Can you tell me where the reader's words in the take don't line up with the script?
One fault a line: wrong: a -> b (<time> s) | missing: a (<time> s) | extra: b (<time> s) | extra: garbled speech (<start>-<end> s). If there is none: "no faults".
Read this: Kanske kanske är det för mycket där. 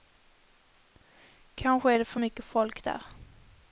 missing: kanske (1.9 s)
extra: folk (2.5 s)